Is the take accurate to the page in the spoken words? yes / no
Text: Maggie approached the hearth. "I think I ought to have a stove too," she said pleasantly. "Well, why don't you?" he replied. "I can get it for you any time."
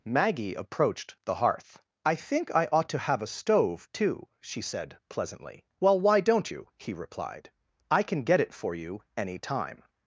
yes